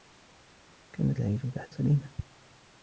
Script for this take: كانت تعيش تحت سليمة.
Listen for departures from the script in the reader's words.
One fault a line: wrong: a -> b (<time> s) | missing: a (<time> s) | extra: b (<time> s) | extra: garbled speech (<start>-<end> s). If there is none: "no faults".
no faults